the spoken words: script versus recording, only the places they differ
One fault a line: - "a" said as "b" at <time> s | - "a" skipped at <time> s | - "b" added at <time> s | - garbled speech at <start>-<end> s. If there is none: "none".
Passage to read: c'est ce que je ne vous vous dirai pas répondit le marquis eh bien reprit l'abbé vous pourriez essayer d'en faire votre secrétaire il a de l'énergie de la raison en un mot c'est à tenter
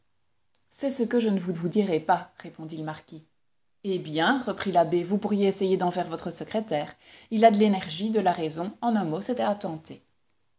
none